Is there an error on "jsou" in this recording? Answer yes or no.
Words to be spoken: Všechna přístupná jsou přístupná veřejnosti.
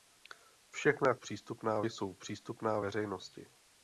no